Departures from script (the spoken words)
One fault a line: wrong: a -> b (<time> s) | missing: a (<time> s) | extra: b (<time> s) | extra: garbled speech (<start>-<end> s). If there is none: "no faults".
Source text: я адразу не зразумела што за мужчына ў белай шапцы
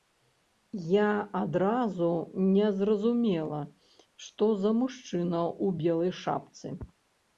no faults